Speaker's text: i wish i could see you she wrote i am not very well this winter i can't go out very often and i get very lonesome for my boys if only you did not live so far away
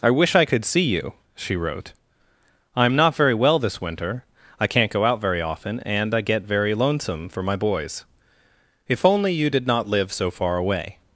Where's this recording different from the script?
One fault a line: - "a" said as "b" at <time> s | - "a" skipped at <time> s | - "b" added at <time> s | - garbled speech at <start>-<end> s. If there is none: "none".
none